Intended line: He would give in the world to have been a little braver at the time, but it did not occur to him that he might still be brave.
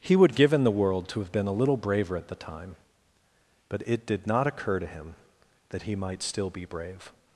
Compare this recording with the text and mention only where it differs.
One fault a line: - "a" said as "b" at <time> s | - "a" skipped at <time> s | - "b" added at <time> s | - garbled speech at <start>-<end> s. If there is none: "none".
none